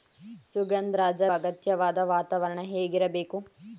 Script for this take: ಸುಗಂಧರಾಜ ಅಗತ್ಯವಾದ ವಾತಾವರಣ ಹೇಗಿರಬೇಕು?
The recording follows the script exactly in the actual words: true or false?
true